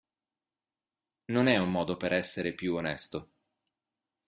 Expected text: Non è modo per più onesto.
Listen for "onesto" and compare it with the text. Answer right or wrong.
right